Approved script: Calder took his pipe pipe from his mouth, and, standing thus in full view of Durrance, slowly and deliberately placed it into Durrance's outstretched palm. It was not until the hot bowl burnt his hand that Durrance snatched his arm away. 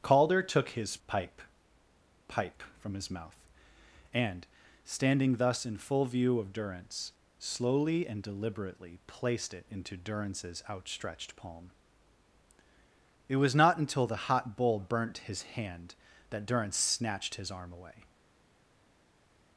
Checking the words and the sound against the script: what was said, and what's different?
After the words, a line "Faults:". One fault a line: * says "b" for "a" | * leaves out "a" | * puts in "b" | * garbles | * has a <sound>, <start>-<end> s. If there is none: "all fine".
Calder took his pipe pipe from his mouth, and, standing thus in full view of Durrance, slowly and deliberately placed it into Durrance's outstretched palm. It was not until the hot bowl burnt his hand that Durrance snatched his arm away.
Faults:
all fine